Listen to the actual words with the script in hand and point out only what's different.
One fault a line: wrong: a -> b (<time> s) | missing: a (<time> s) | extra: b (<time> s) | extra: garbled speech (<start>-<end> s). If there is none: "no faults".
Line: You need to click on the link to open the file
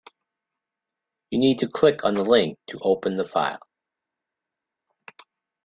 no faults